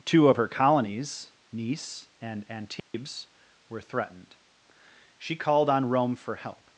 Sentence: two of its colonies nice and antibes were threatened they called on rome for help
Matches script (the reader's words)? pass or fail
fail